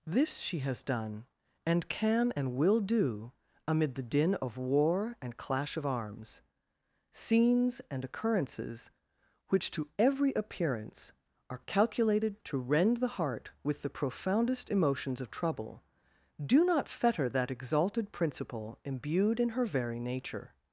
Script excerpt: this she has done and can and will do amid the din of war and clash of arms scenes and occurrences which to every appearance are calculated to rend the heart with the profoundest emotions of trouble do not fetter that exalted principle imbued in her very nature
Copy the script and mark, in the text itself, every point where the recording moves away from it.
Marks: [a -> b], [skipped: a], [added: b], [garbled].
this she has done and can and will do amid the din of war and clash of arms scenes and occurrences which to every appearance are calculated to rend the heart with the profoundest emotions of trouble do not fetter that exalted principle imbued in her very nature